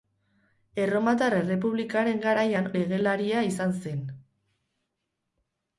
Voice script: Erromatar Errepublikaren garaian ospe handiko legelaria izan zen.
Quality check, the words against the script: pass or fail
fail